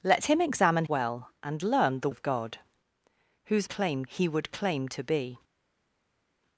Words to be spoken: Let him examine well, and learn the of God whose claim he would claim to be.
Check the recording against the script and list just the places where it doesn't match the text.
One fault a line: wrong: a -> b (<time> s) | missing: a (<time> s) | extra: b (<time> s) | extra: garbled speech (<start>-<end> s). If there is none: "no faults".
no faults